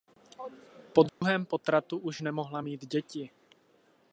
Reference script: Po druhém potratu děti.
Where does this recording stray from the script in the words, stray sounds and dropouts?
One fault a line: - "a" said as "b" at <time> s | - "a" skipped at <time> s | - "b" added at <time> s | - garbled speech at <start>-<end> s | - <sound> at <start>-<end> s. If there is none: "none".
- dropout at 1.1-1.2 s
- "už nemohla mít" added at 2.0 s